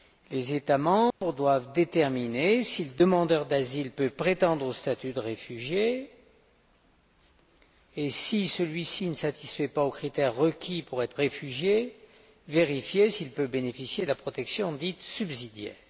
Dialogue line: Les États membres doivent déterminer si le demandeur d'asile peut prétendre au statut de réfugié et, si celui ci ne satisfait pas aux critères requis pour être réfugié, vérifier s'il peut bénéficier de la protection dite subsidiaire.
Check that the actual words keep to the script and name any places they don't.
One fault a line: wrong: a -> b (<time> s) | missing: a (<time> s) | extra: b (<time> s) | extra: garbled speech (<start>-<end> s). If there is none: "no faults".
no faults